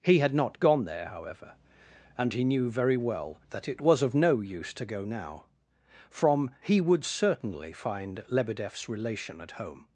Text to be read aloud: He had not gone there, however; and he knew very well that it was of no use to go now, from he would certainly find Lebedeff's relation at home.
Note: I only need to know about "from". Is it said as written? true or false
true